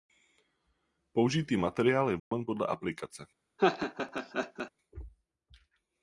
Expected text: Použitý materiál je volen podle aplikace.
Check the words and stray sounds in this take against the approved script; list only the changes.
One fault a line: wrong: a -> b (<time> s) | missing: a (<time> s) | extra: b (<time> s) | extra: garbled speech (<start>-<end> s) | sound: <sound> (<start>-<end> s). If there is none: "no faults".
sound: dropout (2.2-2.3 s)
sound: laugh (3.6-4.7 s)